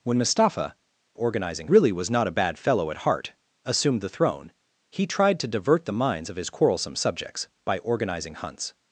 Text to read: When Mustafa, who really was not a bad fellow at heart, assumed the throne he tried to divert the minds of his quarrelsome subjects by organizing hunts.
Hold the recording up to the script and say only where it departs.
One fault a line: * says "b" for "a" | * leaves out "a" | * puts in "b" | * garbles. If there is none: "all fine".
* says "organizing" for "who"